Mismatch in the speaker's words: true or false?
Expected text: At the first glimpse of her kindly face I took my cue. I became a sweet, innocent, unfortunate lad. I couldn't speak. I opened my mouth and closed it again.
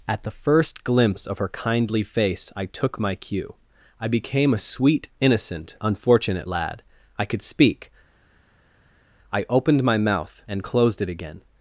true